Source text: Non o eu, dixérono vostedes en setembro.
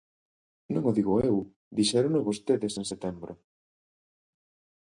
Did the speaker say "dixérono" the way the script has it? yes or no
yes